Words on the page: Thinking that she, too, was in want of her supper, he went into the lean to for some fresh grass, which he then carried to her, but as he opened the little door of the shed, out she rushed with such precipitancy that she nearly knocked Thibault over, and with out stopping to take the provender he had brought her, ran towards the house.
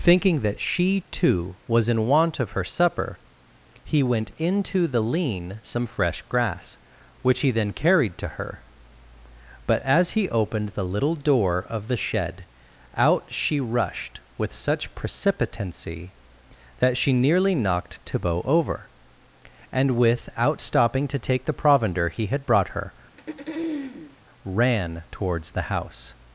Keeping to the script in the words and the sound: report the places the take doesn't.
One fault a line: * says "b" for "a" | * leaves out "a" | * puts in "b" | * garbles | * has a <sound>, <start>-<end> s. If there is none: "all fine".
* leaves out "to for"
* has a throat clearing, 23.2-24.2 s